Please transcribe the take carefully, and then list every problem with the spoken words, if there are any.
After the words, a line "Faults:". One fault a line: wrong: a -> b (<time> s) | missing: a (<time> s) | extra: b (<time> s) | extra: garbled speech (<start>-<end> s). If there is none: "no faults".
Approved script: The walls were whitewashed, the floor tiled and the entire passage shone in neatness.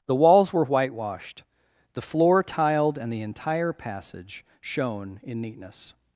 The walls were whitewashed, the floor tiled and the entire passage shone in neatness.
Faults:
no faults